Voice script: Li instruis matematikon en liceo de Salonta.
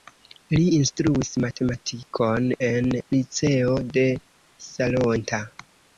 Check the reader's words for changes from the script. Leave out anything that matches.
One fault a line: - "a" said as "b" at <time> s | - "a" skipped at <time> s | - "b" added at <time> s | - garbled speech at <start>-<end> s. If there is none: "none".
none